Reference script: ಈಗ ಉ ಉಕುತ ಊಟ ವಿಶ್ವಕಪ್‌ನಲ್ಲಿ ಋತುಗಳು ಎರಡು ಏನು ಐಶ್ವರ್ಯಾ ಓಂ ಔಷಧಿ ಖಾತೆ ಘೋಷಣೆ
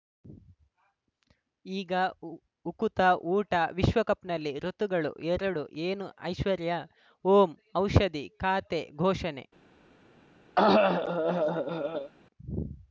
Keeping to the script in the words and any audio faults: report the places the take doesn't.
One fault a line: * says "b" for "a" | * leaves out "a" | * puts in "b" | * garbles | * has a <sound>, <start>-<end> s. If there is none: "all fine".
* has a cough, 10.6-12.1 s